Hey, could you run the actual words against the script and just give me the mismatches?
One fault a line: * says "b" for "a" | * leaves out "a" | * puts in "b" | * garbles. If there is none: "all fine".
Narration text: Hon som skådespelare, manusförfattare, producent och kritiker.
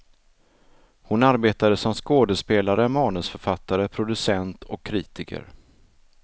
* puts in "arbetade"